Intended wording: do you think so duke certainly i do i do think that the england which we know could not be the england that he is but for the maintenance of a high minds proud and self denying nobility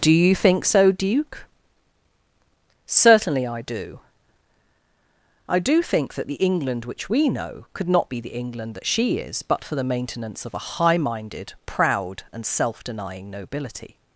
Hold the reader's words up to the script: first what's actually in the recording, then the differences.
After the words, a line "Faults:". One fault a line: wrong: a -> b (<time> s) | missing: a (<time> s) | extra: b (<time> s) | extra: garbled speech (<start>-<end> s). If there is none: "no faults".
do you think so duke certainly i do i do think that the england which we know could not be the england that she is but for the maintenance of a high minded proud and self denying nobility
Faults:
wrong: he -> she (8.9 s)
wrong: minds -> minded (11.0 s)